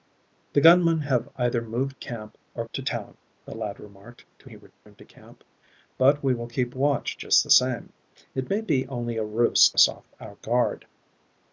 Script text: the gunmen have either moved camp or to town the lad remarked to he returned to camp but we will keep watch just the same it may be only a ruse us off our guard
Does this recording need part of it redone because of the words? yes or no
no